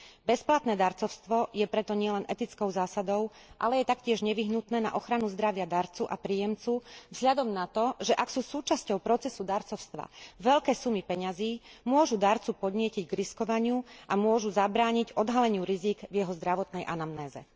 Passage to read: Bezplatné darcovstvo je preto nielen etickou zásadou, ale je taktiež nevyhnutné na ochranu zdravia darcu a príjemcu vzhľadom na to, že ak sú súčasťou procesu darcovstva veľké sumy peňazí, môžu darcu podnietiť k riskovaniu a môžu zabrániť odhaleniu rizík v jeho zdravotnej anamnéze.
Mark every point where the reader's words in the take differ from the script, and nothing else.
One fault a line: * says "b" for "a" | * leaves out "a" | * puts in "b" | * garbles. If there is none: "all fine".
all fine